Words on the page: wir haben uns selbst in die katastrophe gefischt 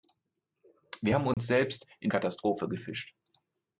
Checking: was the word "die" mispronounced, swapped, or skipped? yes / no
yes